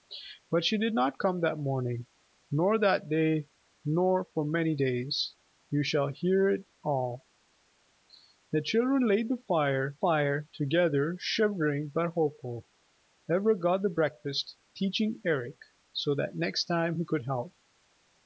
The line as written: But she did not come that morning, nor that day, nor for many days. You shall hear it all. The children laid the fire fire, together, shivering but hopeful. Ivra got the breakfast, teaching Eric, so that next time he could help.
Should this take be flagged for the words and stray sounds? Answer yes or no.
no